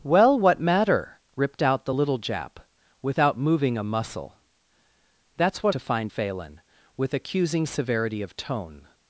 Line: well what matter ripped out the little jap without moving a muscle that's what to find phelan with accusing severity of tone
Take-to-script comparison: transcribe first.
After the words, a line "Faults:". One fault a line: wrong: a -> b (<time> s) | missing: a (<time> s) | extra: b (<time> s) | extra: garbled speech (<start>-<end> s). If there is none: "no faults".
well what matter ripped out the little jap without moving a muscle that's what to find phelan with accusing severity of tone
Faults:
no faults